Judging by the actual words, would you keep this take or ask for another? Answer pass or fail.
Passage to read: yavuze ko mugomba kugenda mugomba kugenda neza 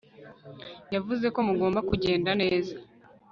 fail